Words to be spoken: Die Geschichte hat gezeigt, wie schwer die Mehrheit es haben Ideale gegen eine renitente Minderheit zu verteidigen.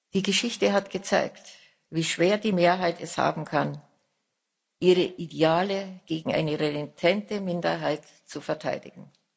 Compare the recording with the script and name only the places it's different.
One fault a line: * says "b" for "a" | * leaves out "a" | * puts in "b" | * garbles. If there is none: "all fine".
* puts in "kann ihre"